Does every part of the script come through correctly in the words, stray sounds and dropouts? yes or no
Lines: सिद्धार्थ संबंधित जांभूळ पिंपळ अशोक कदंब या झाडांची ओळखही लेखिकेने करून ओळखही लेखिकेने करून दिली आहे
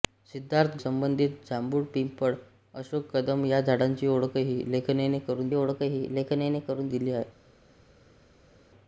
yes